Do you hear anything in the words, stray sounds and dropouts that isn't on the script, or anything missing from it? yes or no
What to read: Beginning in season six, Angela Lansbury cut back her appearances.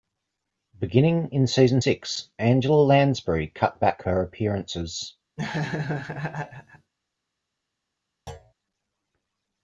yes